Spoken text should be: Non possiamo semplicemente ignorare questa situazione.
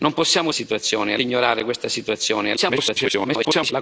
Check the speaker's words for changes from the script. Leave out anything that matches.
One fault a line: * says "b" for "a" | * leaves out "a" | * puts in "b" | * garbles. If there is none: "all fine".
* says "situazione" for "semplicemente"
* garbles